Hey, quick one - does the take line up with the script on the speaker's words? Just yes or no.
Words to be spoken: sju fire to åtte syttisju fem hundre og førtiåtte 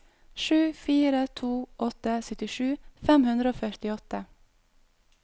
yes